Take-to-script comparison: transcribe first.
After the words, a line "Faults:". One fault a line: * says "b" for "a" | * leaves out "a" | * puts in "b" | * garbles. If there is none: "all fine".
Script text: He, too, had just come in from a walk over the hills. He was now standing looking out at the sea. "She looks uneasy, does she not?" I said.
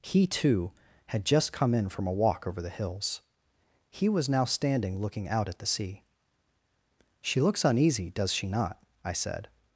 He, too, had just come in from a walk over the hills. He was now standing looking out at the sea. "She looks uneasy, does she not?" I said.
Faults:
all fine